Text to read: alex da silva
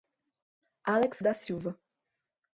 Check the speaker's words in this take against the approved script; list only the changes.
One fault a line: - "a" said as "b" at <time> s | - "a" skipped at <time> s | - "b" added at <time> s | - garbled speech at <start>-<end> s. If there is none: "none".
none